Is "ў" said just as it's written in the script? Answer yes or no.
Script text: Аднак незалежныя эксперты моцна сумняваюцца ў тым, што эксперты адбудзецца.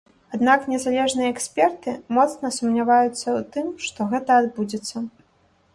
yes